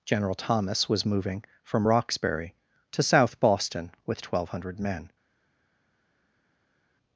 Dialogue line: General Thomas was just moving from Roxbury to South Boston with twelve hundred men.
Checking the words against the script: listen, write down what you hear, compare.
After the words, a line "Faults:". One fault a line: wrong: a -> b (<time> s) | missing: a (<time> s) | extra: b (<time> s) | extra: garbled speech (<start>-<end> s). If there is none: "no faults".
General Thomas was moving from Roxbury to South Boston with twelve hundred men.
Faults:
missing: just (1.1 s)